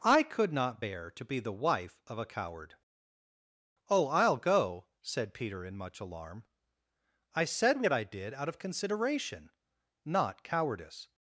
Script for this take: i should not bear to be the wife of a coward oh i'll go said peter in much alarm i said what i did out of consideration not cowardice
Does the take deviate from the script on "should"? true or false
true